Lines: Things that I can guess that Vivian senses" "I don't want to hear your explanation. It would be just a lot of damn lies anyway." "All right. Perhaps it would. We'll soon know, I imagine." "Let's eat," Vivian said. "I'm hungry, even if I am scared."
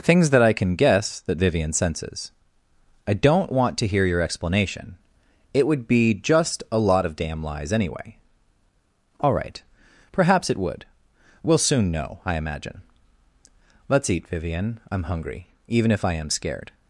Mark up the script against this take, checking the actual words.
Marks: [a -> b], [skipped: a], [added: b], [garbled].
Things that I can guess that Vivian senses" "I don't want to hear your explanation. It would be just a lot of damn lies anyway." "All right. Perhaps it would. We'll soon know, I imagine." "Let's eat," Vivian [skipped: said.] "I'm hungry, even if I am scared."